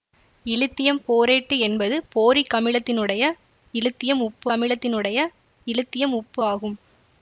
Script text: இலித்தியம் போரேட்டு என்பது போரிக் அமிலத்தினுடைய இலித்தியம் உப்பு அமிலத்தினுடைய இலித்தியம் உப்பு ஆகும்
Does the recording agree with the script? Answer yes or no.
yes